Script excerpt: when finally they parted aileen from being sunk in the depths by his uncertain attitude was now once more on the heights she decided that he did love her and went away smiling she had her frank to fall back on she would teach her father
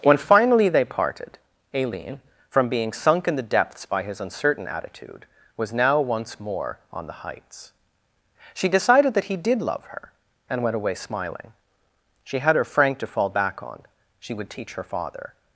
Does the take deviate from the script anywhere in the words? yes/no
no